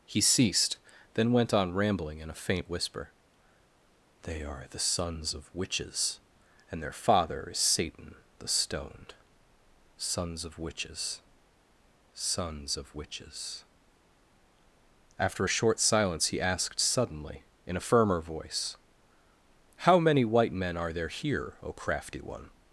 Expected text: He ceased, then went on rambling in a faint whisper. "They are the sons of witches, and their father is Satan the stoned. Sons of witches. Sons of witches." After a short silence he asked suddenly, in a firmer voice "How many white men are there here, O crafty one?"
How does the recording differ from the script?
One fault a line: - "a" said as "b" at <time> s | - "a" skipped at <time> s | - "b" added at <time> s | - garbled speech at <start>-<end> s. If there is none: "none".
none